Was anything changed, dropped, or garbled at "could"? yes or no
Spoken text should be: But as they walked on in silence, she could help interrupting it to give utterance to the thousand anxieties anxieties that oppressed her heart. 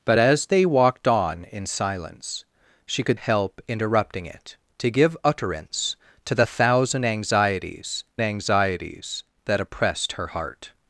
no